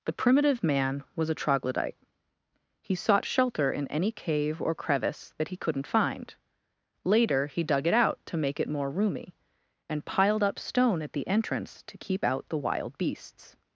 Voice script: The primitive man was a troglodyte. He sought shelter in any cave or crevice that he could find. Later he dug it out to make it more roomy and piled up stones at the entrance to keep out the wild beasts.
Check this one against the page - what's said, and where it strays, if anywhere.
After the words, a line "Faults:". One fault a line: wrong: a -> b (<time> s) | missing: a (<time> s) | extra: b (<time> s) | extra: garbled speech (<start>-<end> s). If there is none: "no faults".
The primitive man was a troglodyte. He sought shelter in any cave or crevice that he couldn't find. Later he dug it out to make it more roomy and piled up stone at the entrance to keep out the wild beasts.
Faults:
wrong: could -> couldn't (5.6 s)
wrong: stones -> stone (10.6 s)